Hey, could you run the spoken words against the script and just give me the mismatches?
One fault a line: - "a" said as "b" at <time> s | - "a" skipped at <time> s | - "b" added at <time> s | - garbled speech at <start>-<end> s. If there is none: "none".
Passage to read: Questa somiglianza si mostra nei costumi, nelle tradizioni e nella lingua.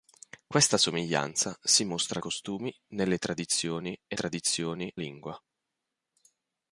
- "nei" skipped at 2.2 s
- "nella" said as "tradizioni" at 4.1 s